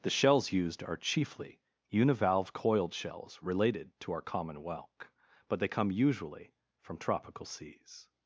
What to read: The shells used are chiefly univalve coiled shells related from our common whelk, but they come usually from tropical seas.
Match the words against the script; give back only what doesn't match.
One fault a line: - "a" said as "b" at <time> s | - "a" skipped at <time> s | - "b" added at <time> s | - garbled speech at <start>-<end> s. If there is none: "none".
- "from" said as "to" at 4.0 s